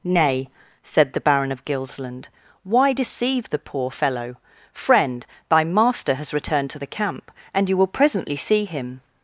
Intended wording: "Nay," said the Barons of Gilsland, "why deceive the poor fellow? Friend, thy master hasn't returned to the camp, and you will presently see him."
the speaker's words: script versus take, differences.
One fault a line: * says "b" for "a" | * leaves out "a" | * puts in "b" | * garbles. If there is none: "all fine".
* says "Baron" for "Barons"
* says "has" for "hasn't"